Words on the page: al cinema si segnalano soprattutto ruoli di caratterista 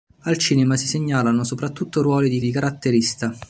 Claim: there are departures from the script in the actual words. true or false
true